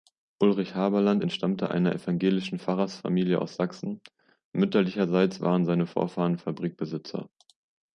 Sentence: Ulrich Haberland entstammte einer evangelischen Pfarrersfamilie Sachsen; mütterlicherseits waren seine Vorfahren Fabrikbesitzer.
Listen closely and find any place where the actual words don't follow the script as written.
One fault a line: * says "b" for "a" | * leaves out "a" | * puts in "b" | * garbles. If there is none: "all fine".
* puts in "aus"